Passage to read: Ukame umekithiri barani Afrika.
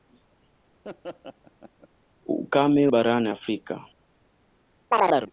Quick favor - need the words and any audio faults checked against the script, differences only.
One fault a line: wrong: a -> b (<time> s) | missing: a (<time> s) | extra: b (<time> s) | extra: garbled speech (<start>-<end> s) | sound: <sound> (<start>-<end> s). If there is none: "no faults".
sound: laugh (0.8-1.9 s)
missing: umekithiri (2.9 s)
sound: chirp (4.9-5.3 s)